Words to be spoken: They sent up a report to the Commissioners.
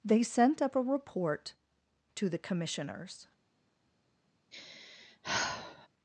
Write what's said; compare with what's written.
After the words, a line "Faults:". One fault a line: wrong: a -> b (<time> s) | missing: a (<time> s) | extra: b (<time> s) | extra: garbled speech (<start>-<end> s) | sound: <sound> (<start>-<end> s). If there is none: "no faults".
They sent up a report to the Commissioners.
Faults:
sound: sigh (4.5-5.9 s)